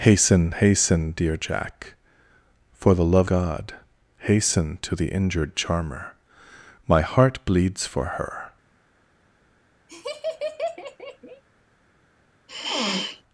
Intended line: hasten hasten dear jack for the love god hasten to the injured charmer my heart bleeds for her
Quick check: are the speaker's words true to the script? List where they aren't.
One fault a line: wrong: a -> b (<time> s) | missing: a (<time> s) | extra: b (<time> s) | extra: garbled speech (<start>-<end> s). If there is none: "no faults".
no faults